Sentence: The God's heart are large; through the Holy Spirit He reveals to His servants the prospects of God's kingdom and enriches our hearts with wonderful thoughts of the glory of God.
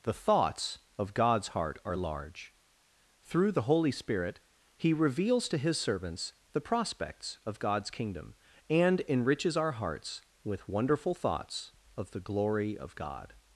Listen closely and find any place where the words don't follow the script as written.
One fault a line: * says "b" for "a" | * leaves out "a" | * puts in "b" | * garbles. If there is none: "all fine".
* puts in "thoughts of"